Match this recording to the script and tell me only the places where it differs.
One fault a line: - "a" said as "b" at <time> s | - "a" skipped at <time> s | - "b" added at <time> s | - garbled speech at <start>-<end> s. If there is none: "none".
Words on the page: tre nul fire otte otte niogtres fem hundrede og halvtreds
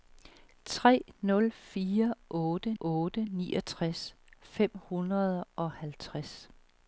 none